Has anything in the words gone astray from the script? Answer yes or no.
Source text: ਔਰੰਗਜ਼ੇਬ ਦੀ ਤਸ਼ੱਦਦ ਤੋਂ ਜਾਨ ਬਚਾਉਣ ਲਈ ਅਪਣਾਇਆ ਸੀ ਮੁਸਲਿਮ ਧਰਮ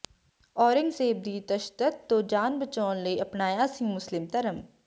no